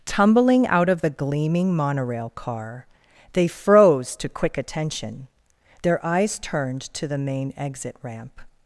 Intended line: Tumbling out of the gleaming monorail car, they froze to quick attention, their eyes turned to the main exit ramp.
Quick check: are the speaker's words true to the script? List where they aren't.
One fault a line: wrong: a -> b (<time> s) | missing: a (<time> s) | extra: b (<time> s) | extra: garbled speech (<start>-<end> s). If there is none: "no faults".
no faults